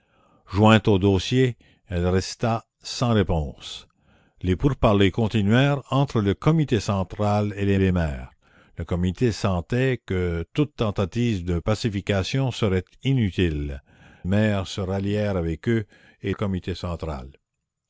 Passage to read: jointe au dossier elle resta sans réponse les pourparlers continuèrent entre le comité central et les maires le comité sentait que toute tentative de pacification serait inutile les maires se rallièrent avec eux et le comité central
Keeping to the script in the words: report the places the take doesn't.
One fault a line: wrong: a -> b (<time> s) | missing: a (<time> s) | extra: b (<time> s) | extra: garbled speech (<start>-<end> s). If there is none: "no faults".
extra: les (7.8 s)
missing: les (13.8 s)
missing: le (16.3 s)